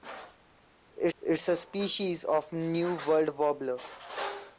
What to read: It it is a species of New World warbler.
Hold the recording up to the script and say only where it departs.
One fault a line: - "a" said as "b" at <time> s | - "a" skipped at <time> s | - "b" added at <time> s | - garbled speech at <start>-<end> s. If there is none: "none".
none